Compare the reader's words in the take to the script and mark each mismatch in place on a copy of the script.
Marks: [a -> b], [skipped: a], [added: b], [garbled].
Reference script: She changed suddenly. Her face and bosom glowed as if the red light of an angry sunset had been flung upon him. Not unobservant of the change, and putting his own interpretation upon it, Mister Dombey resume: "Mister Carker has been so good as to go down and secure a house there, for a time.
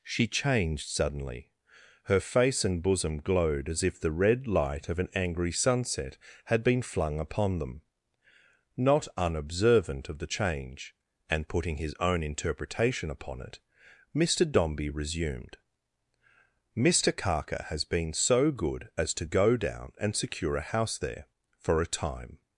She changed suddenly. Her face and bosom glowed as if the red light of an angry sunset had been flung upon [him. -> them] Not unobservant of the change, and putting his own interpretation upon it, Mister Dombey [resume: -> resumed] "Mister Carker has been so good as to go down and secure a house there, for a time.